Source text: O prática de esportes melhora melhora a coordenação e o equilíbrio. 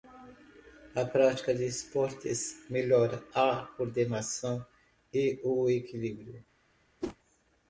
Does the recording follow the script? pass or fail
fail